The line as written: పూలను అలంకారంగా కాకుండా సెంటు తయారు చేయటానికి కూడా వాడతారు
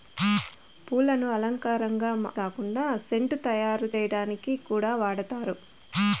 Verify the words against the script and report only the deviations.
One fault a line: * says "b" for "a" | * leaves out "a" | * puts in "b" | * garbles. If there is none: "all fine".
all fine